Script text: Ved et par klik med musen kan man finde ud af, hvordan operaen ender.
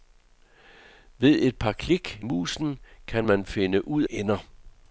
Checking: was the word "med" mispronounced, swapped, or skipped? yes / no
yes